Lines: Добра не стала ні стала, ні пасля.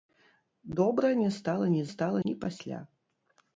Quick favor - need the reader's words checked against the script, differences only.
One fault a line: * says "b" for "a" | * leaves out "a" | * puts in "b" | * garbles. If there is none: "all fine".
all fine